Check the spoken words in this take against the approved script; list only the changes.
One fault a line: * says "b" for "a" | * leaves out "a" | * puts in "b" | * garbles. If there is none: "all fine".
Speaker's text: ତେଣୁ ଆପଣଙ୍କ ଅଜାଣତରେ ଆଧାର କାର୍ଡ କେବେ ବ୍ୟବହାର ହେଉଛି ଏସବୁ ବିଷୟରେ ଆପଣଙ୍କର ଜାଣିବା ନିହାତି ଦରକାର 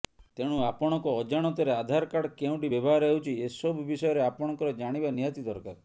* says "କେଉଁଠି" for "କେବେ"